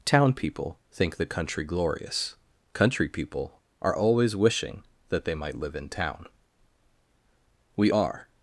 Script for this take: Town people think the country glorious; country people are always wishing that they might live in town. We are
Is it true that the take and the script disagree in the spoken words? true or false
false